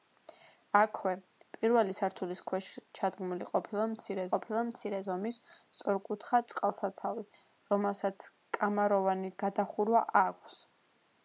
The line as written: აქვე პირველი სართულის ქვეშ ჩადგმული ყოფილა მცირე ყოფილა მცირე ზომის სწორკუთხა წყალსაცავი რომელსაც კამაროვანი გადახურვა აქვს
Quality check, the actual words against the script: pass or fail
pass